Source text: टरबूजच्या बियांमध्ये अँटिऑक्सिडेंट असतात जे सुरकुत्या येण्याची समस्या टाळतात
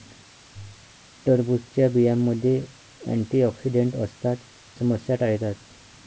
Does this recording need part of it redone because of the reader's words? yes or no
yes